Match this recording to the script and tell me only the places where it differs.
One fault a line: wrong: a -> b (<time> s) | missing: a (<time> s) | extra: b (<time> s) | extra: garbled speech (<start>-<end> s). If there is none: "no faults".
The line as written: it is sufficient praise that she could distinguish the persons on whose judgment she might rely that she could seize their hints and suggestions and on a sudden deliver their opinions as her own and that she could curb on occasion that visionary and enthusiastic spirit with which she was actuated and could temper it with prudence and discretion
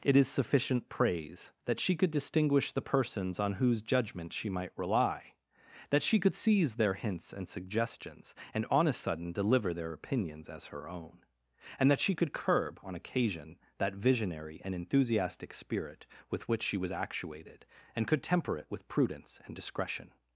no faults